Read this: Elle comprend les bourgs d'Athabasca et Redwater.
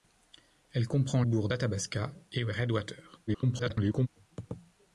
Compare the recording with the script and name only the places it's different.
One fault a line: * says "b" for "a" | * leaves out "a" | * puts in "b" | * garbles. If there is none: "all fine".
* leaves out "les"
* garbles